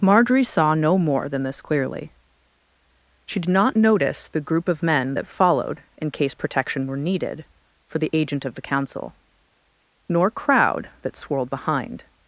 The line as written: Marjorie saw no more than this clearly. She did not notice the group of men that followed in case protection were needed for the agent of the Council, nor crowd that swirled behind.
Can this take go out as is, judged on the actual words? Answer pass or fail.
pass